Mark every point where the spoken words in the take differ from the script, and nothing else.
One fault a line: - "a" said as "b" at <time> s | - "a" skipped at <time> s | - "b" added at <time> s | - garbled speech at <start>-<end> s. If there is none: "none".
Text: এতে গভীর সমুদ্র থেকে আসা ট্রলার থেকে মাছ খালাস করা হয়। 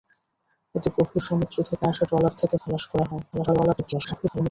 - "মাছ" skipped at 2.5 s
- garbled speech at 3.3-4.5 s